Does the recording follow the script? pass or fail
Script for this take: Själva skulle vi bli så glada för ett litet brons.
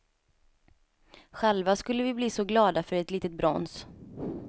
pass